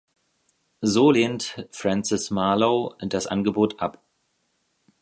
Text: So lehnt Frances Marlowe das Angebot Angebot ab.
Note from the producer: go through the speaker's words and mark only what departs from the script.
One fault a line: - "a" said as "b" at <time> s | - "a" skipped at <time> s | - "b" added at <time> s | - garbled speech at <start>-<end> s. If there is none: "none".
- "Angebot" skipped at 3.8 s